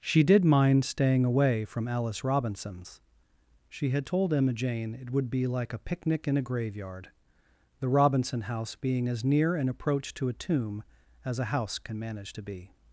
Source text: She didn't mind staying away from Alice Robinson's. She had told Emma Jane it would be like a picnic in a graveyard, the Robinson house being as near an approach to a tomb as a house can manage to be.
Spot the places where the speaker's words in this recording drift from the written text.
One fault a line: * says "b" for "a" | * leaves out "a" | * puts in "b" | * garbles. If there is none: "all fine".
* says "did" for "didn't"